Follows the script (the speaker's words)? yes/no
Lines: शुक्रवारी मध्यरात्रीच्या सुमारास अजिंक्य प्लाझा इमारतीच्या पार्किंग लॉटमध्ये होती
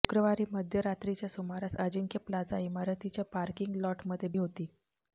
yes